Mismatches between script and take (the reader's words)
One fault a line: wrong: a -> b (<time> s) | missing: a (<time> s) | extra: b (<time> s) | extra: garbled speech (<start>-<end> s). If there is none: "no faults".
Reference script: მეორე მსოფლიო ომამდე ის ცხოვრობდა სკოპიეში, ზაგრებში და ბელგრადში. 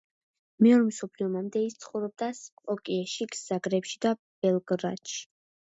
no faults